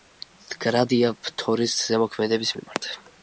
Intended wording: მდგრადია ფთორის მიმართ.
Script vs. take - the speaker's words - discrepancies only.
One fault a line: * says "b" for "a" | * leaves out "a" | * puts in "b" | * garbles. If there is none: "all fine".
* puts in "ზემოქმედების"